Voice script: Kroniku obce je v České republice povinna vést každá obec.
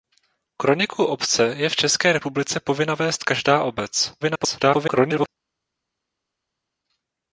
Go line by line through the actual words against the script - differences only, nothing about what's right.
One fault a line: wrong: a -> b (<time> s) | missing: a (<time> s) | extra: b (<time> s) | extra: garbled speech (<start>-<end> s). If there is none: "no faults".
extra: garbled speech (4.2-5.3 s)